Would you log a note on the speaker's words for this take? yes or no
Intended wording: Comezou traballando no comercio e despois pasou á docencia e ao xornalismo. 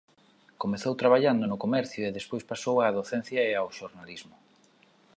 no